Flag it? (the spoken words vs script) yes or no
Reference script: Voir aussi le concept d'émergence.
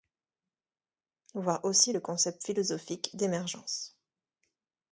yes